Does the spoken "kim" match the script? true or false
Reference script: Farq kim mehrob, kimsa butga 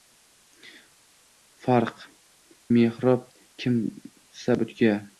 false